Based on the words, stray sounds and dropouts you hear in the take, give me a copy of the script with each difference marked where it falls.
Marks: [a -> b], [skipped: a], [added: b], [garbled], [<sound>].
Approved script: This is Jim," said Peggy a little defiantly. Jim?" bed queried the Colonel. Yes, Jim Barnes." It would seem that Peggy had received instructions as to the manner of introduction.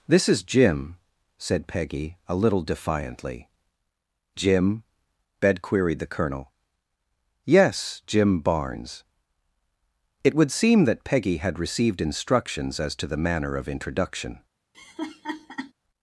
This is Jim," said Peggy a little defiantly. Jim?" bed queried the Colonel. Yes, Jim Barnes." It would seem that Peggy had received instructions as to the manner of introduction. [laugh]